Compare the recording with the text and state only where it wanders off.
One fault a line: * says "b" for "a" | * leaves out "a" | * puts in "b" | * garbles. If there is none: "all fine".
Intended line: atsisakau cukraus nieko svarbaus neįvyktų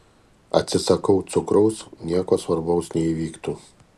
all fine